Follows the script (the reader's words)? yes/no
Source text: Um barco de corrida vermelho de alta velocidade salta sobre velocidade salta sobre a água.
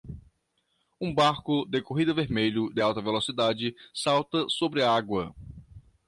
no